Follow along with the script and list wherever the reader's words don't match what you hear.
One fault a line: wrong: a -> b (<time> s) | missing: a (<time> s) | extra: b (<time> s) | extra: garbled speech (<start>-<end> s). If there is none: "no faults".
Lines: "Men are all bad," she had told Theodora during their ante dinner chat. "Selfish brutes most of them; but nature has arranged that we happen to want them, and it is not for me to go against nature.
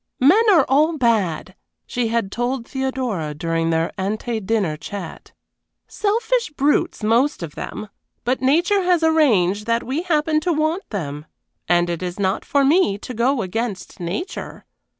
no faults